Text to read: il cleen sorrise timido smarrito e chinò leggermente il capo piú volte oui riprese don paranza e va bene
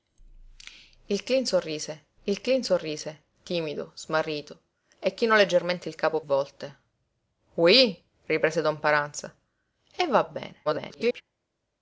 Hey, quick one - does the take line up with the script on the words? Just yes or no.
no